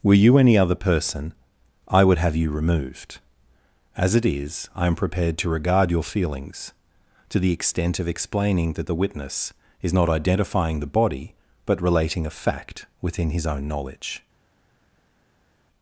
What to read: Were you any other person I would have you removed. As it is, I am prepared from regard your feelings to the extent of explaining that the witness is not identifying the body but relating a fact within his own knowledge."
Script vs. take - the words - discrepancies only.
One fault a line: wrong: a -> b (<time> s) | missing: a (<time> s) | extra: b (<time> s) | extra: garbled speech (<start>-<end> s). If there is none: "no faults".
wrong: from -> to (5.4 s)